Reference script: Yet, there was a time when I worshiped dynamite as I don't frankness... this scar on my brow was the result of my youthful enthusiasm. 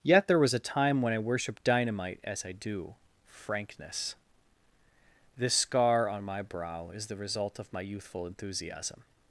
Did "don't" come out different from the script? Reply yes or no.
yes